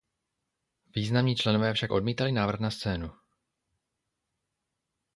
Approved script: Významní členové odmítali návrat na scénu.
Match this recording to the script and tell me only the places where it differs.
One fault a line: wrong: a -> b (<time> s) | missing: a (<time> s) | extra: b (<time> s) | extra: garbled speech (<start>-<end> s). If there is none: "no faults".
extra: však (1.7 s)